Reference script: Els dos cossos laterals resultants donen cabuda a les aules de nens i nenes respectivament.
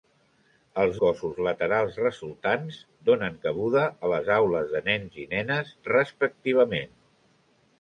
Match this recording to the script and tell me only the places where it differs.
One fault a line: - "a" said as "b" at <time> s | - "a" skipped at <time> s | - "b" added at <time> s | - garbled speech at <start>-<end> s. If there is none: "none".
- "dos" skipped at 0.9 s